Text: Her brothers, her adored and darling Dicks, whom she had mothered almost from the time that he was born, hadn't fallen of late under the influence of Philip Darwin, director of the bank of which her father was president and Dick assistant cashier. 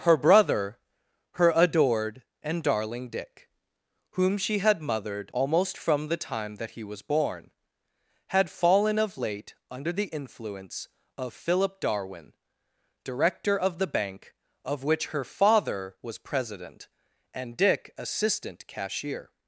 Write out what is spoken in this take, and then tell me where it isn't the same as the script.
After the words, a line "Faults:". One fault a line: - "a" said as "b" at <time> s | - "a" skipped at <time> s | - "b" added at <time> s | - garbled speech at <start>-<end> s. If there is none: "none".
Her brother, her adored and darling Dick, whom she had mothered almost from the time that he was born, had fallen of late under the influence of Philip Darwin, director of the bank of which her father was president and Dick assistant cashier.
Faults:
- "brothers" said as "brother" at 0.2 s
- "Dicks" said as "Dick" at 3.1 s
- "hadn't" said as "had" at 8.3 s